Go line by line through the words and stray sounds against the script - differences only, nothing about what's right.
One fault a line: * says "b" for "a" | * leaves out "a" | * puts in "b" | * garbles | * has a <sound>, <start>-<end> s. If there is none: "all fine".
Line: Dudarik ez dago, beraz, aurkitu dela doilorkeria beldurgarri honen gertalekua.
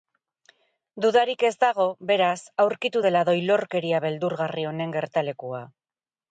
all fine